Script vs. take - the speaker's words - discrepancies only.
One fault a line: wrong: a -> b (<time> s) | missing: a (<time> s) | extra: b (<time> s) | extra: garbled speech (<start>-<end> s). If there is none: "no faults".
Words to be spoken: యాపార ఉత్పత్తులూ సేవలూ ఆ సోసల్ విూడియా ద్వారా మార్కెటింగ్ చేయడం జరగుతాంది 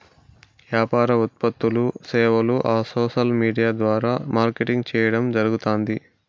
no faults